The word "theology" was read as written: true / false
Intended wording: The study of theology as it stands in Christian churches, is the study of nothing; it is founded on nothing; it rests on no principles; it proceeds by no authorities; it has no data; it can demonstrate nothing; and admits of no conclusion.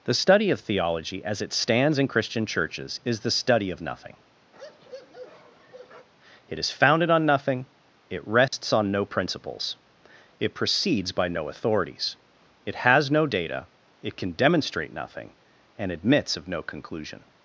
true